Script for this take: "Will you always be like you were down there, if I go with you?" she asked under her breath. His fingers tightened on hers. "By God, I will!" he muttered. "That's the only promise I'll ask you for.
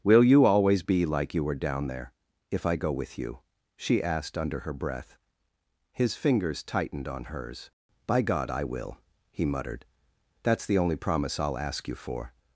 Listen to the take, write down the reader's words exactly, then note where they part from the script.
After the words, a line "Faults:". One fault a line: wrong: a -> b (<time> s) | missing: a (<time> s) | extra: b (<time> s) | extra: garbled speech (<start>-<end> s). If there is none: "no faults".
"Will you always be like you were down there, if I go with you?" she asked under her breath. His fingers tightened on hers. "By God, I will!" he muttered. "That's the only promise I'll ask you for.
Faults:
no faults